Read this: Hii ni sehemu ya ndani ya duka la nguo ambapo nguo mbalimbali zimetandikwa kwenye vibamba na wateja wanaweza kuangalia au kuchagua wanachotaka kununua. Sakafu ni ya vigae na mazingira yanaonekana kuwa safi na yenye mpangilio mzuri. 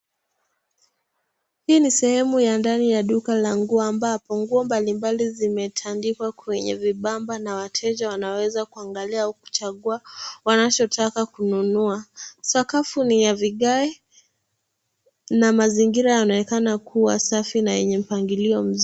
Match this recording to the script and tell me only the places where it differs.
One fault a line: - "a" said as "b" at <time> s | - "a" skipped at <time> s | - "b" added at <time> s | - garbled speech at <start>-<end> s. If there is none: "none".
none